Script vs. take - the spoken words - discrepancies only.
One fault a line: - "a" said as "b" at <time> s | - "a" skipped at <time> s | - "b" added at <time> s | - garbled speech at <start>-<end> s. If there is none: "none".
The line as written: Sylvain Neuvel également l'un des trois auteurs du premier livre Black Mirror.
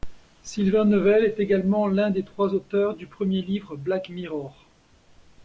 - "est" added at 1.2 s